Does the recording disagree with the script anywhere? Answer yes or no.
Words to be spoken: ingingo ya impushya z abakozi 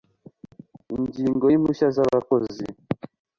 no